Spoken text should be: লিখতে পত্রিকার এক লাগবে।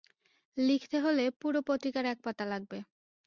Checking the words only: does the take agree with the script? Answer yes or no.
no